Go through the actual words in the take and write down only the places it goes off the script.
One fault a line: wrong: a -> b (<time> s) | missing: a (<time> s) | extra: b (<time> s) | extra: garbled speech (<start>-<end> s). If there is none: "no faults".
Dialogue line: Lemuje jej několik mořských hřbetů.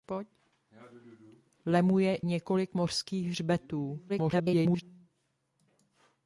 missing: jej (2.2 s)
extra: garbled speech (4.1-4.8 s)